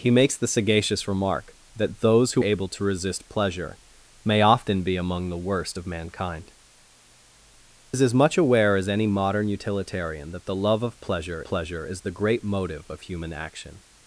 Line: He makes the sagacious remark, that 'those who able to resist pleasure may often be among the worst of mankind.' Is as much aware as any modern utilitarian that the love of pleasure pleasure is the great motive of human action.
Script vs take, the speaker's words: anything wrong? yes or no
no